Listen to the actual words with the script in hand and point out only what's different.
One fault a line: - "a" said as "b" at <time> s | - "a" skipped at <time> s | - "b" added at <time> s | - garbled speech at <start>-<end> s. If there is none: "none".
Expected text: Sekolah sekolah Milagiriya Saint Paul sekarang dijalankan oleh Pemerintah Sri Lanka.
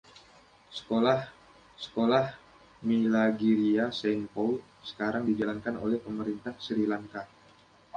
none